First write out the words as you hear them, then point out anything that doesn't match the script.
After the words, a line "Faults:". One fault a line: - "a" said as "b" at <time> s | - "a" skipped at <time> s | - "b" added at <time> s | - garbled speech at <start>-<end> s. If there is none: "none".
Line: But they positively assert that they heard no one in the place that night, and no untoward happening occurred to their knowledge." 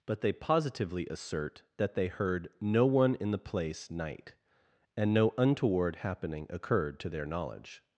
But they positively assert that they heard no one in the place night, and no untoward happening occurred to their knowledge."
Faults:
- "that" skipped at 3.9 s